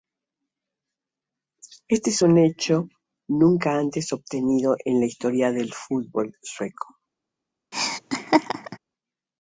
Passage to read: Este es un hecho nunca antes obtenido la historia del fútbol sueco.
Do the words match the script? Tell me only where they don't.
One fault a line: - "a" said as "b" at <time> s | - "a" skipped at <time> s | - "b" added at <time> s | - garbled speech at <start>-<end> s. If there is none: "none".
- "en" added at 4.8 s